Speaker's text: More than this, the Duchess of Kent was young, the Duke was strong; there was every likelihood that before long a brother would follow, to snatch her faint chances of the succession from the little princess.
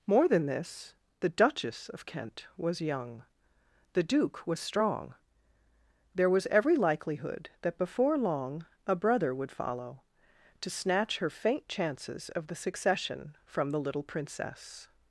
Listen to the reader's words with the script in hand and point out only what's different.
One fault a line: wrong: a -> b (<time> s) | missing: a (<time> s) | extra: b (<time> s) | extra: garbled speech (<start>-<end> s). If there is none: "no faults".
no faults